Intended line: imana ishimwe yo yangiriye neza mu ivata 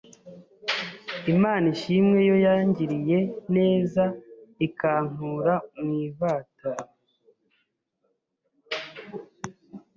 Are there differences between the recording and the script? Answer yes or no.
yes